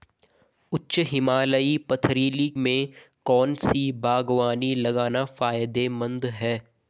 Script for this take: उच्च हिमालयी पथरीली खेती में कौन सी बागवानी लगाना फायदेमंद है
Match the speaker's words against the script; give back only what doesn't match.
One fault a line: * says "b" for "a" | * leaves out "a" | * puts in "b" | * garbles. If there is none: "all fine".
* leaves out "खेती"